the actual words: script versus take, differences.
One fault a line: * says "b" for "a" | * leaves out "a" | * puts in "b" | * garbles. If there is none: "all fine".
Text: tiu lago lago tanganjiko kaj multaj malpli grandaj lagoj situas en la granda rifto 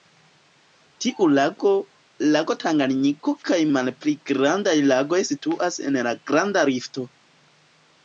* leaves out "multaj"